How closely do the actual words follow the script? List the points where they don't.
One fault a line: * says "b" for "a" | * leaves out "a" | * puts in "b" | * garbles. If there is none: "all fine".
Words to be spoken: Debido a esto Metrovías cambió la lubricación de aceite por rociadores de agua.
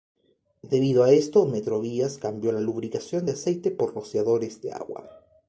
all fine